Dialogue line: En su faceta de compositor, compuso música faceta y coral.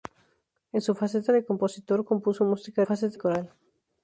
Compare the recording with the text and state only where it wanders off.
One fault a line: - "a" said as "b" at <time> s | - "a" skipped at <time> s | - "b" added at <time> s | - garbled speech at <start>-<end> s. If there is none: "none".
none